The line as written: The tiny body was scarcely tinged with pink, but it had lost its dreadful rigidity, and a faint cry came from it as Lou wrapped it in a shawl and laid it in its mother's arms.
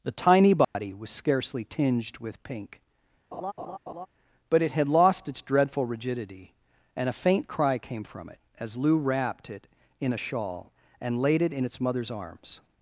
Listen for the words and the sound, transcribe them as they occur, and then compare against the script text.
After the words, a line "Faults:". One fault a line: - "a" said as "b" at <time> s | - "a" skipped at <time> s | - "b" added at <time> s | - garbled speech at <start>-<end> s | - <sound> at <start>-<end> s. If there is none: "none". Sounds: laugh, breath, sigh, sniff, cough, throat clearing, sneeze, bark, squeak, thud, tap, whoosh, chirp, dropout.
The tiny body was scarcely tinged with pink, but it had lost its dreadful rigidity, and a faint cry came from it as Lou wrapped it in a shawl and laid it in its mother's arms.
Faults:
- dropout at 0.6-0.7 s
- laugh at 3.3-4.1 s